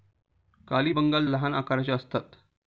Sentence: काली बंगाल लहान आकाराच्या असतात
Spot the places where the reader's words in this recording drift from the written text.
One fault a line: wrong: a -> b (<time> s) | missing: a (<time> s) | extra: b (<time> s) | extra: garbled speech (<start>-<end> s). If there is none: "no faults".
no faults